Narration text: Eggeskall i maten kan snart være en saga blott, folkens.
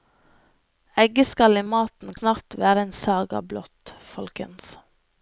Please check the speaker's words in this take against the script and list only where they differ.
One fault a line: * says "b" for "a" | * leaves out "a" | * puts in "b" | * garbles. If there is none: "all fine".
* leaves out "kan"